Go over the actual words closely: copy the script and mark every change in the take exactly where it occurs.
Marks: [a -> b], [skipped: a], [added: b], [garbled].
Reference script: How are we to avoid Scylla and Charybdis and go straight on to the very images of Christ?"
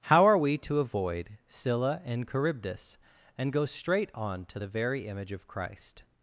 How are we to avoid Scylla and Charybdis and go straight on to the very [images -> image] of Christ?"